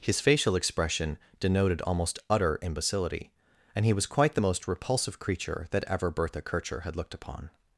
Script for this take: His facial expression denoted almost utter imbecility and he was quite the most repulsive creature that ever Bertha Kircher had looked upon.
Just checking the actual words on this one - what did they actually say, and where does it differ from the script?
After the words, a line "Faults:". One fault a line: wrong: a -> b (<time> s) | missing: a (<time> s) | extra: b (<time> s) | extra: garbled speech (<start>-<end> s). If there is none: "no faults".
His facial expression denoted almost utter imbecility and he was quite the most repulsive creature that ever Bertha Kircher had looked upon.
Faults:
no faults